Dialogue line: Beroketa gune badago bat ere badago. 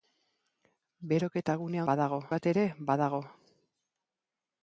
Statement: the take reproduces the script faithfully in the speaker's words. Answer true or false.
true